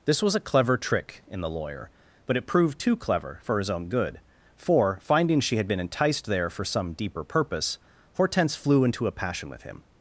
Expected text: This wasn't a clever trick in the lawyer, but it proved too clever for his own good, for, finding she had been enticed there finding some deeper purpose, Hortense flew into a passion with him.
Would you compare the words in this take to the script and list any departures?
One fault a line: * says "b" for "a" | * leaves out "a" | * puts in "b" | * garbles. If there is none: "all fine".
* says "was" for "wasn't"
* says "for" for "finding"